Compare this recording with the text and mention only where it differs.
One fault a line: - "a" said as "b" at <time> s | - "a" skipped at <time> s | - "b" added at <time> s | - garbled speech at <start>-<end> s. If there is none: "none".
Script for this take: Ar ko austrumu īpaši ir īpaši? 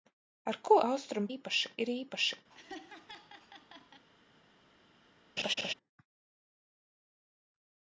none